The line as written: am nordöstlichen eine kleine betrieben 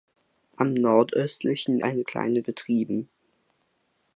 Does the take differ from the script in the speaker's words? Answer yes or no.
no